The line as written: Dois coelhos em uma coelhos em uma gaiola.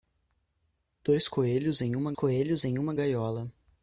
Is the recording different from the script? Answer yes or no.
no